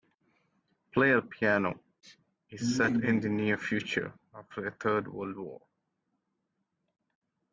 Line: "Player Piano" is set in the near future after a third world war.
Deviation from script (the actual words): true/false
false